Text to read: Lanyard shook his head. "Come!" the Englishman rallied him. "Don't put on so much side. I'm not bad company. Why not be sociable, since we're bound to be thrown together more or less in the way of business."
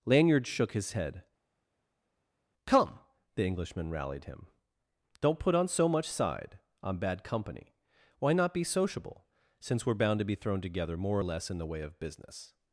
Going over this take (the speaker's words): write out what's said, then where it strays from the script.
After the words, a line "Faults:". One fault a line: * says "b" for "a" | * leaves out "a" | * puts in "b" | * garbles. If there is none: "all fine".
Lanyard shook his head. "Come!" the Englishman rallied him. "Don't put on so much side. I'm bad company. Why not be sociable, since we're bound to be thrown together more or less in the way of business."
Faults:
* leaves out "not"